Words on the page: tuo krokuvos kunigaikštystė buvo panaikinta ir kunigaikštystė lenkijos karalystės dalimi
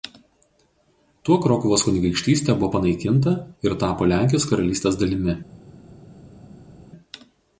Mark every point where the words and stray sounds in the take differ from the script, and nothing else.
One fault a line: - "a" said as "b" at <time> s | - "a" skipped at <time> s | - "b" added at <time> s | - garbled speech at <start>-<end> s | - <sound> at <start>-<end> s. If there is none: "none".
- "kunigaikštystė" said as "tapo" at 3.8 s